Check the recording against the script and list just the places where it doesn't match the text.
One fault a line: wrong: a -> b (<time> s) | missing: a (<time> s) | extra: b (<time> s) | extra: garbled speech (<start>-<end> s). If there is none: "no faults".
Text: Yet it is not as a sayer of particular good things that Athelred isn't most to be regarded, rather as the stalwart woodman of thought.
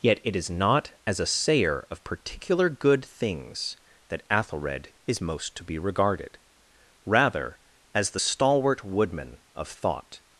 wrong: isn't -> is (5.1 s)